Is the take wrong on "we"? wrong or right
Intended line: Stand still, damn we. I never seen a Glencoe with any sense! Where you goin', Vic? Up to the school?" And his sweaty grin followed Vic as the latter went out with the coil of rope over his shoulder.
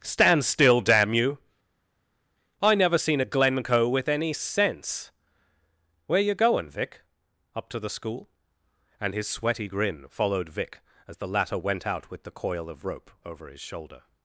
wrong